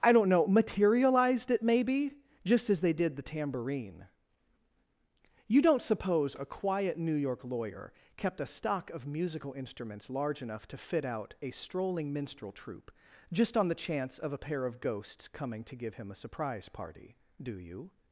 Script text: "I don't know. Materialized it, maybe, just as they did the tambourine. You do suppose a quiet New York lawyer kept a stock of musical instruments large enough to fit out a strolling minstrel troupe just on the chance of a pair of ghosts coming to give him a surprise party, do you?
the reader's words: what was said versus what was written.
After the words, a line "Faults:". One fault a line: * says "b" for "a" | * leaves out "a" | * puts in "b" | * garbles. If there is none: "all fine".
"I don't know. Materialized it, maybe, just as they did the tambourine. You don't suppose a quiet New York lawyer kept a stock of musical instruments large enough to fit out a strolling minstrel troupe just on the chance of a pair of ghosts coming to give him a surprise party, do you?
Faults:
* says "don't" for "do"